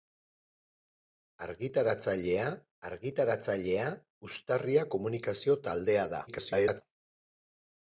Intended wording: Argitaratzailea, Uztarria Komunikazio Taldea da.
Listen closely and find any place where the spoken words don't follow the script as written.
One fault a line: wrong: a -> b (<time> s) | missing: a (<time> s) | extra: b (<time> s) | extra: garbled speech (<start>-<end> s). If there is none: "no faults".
extra: argitaratzailea (2.9 s)
extra: garbled speech (6.3-6.8 s)